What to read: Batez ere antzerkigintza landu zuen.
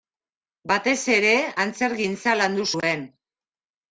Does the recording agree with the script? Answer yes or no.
yes